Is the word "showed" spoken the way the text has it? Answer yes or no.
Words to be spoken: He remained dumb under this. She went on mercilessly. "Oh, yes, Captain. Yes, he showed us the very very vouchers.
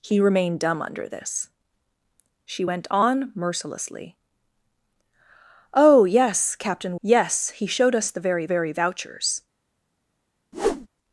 yes